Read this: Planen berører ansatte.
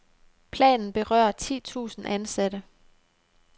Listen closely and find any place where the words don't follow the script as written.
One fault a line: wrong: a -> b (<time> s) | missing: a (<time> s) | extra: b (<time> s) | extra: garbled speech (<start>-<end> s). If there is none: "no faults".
extra: ti tusind (1.3 s)